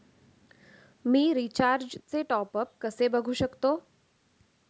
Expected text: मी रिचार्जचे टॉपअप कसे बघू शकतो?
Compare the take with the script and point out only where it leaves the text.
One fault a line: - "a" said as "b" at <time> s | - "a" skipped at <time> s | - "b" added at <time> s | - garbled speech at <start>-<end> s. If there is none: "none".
none